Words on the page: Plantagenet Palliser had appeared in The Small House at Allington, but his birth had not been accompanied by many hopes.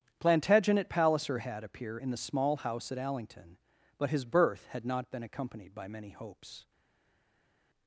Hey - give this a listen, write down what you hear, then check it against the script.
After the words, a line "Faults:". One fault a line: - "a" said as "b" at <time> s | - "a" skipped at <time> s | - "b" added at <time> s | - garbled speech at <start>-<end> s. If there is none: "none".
Plantagenet Palliser had appear in The Small House at Allington, but his birth had not been accompanied by many hopes.
Faults:
- "appeared" said as "appear" at 1.6 s